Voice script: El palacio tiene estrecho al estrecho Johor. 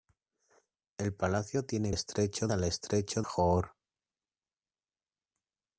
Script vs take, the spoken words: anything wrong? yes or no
no